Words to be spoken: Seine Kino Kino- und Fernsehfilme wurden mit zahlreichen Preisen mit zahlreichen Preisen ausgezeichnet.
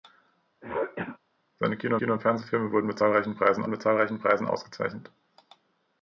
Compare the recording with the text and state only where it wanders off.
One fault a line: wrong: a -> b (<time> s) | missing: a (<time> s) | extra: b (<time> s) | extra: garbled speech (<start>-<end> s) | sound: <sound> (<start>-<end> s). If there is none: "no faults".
sound: throat clearing (0.6-1.2 s)